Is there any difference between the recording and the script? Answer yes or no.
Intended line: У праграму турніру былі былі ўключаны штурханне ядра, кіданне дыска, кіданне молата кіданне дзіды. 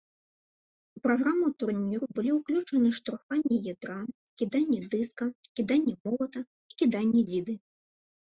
yes